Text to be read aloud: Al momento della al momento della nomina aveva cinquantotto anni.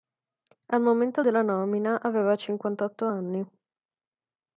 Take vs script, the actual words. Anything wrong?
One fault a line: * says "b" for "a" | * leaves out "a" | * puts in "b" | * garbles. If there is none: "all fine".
* leaves out "al momento della"